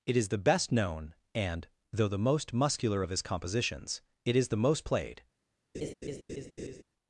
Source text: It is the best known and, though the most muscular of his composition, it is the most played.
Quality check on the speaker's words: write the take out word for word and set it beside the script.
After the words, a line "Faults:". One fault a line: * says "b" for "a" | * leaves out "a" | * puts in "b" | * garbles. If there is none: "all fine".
It is the best known and, though the most muscular of his compositions, it is the most played.
Faults:
* says "compositions" for "composition"